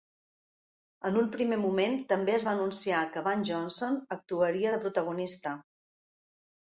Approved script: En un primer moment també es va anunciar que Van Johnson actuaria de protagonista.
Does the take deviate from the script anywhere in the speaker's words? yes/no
no